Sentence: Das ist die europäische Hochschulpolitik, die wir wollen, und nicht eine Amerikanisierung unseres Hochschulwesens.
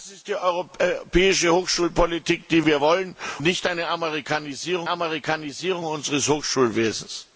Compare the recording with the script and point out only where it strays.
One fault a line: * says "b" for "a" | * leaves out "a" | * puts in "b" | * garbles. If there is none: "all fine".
* leaves out "und"
* puts in "Amerikanisierung"